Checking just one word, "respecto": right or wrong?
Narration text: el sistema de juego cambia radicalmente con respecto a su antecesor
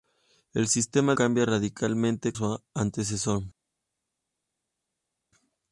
wrong